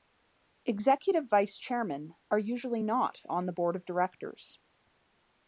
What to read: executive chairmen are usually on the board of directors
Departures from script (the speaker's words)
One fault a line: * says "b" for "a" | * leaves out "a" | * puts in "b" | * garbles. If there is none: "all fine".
* puts in "vice"
* puts in "not"